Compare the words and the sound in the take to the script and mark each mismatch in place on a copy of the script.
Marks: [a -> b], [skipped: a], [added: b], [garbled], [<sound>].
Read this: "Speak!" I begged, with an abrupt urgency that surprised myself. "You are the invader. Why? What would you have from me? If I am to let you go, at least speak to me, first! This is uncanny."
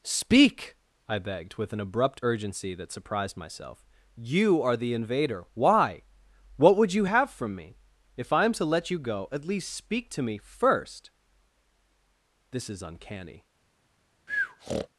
"Speak!" I begged, with an abrupt urgency that surprised myself. "You are the invader. Why? What would you have from me? If I am to let you go, at least speak to me, first! This is uncanny." [breath]